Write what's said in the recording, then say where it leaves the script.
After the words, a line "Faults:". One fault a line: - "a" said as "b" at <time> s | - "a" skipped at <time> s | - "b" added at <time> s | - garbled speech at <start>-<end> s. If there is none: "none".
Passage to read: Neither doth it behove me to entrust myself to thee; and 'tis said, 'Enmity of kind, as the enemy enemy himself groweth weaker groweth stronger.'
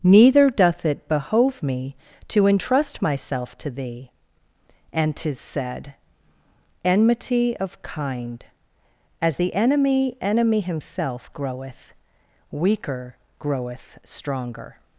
Neither doth it behove me to entrust myself to thee; and 'tis said, 'Enmity of kind, as the enemy enemy himself groweth weaker groweth stronger.'
Faults:
none